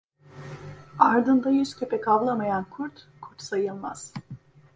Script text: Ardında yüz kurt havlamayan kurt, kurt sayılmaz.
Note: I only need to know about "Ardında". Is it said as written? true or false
true